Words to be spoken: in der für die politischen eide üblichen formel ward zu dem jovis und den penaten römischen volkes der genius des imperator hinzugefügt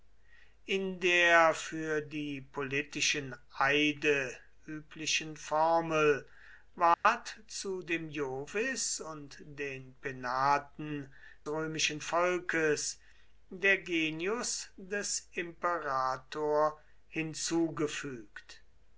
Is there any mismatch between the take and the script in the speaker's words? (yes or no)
no